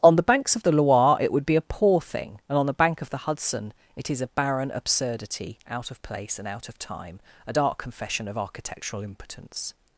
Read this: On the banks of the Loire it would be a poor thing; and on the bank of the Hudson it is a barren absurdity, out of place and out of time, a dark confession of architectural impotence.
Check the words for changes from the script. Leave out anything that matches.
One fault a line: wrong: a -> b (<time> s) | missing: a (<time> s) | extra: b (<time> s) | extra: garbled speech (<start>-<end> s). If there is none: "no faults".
no faults